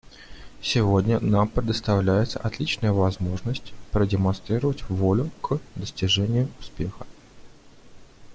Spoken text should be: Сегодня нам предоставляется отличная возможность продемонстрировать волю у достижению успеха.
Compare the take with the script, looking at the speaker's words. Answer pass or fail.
fail